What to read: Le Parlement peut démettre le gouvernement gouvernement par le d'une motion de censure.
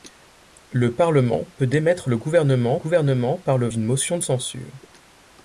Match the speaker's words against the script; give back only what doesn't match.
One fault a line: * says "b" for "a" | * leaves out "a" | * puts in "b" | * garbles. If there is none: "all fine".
all fine